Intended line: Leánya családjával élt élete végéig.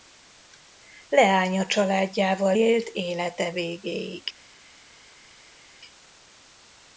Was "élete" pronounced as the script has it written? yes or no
yes